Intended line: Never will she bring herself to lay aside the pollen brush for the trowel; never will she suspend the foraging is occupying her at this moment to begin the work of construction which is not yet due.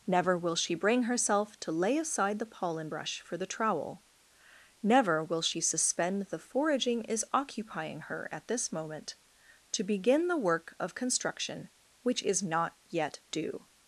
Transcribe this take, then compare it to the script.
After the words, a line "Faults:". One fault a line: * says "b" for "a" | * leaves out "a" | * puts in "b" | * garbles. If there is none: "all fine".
Never will she bring herself to lay aside the pollen brush for the trowel; never will she suspend the foraging is occupying her at this moment to begin the work of construction which is not yet due.
Faults:
all fine